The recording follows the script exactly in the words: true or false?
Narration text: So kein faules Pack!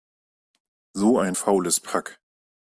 false